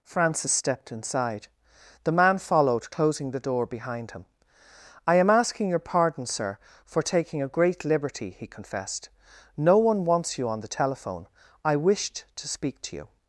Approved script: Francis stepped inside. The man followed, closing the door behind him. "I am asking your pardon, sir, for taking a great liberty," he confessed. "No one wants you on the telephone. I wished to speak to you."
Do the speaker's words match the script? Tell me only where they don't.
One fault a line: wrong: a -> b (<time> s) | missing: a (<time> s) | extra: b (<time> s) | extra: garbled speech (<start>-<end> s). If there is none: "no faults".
no faults